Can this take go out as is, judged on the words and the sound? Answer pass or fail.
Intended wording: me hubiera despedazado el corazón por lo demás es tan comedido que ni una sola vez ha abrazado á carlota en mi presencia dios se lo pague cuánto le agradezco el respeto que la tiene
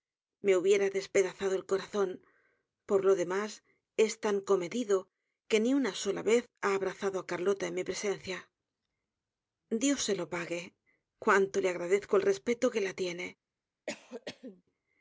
fail